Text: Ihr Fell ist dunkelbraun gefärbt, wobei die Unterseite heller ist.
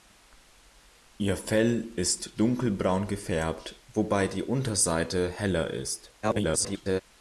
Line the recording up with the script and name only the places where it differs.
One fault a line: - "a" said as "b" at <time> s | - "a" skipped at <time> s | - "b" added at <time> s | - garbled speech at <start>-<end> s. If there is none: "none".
- garbled speech at 6.2-7.0 s